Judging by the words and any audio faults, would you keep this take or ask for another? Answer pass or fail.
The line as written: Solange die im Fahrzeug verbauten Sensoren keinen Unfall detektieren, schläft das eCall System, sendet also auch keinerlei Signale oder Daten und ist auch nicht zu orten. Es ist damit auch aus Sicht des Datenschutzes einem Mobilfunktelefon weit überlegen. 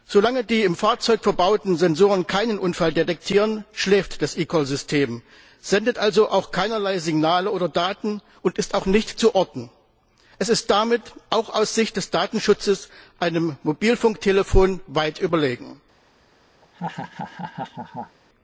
fail